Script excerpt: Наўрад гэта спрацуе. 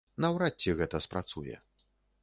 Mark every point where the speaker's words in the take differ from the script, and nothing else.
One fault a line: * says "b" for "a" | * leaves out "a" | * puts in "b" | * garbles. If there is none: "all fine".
* puts in "ці"